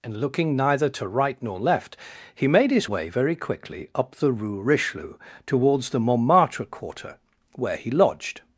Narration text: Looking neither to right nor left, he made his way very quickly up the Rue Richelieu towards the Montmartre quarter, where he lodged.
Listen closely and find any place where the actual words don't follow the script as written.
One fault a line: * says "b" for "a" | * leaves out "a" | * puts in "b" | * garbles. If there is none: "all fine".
* puts in "and"